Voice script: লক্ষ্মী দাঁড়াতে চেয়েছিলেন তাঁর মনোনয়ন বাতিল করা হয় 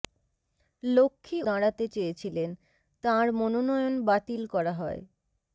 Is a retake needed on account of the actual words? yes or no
no